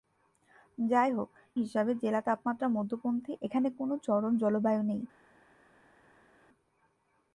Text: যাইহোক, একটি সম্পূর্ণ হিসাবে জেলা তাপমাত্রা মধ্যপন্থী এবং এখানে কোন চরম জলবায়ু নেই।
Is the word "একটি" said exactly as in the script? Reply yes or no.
no